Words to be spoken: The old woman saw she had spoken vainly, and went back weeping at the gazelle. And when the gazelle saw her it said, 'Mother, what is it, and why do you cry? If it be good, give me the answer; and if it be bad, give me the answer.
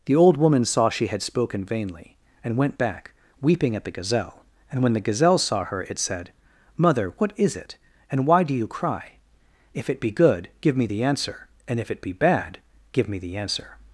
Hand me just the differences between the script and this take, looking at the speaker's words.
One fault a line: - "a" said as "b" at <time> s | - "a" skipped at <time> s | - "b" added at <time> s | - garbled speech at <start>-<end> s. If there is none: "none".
none